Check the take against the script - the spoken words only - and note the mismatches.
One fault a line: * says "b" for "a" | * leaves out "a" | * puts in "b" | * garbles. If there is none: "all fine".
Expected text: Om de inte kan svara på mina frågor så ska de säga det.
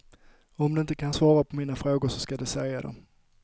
all fine